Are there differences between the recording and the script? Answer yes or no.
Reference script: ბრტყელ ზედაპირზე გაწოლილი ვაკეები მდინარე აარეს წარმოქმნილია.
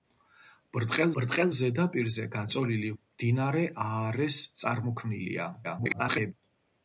yes